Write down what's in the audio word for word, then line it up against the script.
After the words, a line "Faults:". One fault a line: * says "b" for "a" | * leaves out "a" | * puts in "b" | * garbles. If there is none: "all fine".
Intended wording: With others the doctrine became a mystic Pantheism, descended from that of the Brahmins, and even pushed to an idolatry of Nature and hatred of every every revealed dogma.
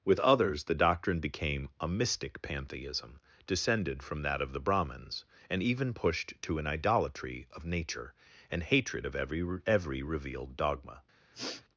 With others the doctrine became a mystic Pantheism, descended from that of the Brahmins, and even pushed to an idolatry of Nature and hatred of every every revealed dogma.
Faults:
all fine